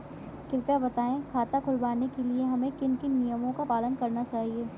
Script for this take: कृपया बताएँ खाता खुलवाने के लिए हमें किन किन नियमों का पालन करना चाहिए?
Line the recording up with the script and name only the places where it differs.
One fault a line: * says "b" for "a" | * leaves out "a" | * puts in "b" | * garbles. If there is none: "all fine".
all fine